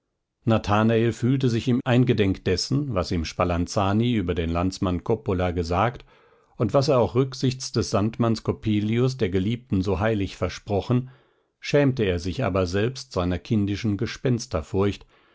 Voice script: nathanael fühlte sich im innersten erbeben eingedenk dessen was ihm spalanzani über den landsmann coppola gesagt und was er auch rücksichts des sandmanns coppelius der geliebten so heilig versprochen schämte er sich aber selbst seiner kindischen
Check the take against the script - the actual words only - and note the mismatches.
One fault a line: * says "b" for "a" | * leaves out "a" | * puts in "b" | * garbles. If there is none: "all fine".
* leaves out "innersten erbeben"